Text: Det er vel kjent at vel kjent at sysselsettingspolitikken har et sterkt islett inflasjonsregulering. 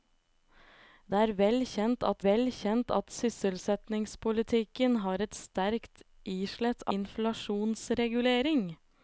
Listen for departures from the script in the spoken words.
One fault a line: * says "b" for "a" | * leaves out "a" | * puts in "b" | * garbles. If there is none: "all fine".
all fine